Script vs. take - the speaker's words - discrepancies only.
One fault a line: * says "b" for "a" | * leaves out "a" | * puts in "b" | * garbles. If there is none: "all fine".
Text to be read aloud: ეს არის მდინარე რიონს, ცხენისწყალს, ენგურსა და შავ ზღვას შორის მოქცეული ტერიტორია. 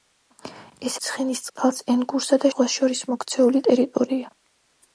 * leaves out "არის მდინარე რიონს"
* leaves out "შავ"